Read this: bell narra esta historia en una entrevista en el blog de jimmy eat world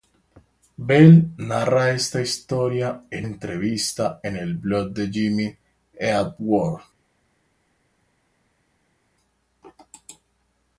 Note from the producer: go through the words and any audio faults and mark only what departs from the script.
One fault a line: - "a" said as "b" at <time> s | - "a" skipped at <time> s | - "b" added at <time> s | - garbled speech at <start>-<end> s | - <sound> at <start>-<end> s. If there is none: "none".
- "una" skipped at 3.3 s